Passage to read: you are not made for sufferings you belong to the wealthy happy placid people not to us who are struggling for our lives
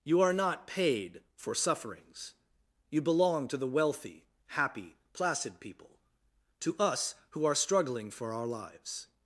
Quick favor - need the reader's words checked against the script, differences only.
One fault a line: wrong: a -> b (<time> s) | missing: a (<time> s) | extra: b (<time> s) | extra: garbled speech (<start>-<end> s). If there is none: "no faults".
wrong: made -> paid (0.7 s)
missing: not (6.0 s)